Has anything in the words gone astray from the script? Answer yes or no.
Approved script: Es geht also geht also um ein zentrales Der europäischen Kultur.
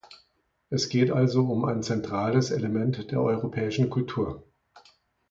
yes